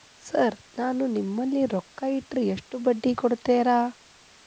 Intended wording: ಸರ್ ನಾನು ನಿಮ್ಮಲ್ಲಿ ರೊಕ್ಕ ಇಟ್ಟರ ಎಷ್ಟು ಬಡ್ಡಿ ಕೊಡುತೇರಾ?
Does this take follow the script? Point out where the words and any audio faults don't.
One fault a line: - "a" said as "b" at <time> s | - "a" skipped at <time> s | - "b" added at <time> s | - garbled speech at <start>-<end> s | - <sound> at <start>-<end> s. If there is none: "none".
none